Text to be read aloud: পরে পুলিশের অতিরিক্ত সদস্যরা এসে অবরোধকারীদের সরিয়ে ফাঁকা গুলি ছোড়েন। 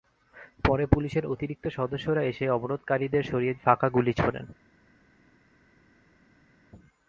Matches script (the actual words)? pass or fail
pass